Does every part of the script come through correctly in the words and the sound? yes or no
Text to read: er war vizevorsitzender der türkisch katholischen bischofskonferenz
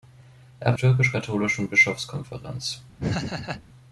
no